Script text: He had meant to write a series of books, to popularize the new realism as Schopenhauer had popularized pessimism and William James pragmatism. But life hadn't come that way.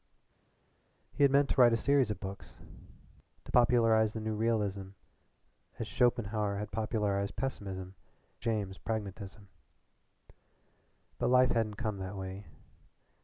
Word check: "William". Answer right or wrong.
wrong